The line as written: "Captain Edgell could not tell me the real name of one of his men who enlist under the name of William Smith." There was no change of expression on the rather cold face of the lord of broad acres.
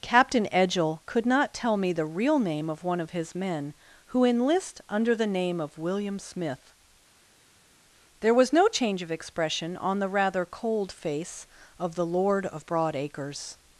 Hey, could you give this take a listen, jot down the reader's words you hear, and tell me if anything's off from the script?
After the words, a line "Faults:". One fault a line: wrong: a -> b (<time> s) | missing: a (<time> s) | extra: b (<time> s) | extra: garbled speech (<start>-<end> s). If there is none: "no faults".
"Captain Edgell could not tell me the real name of one of his men who enlist under the name of William Smith." There was no change of expression on the rather cold face of the lord of broad acres.
Faults:
no faults